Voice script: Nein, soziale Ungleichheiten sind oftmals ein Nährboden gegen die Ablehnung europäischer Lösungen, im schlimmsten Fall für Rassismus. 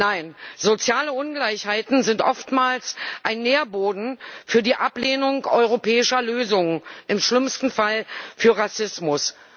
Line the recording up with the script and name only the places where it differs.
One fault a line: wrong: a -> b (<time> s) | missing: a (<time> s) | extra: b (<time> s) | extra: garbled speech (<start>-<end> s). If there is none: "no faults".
wrong: gegen -> für (4.5 s)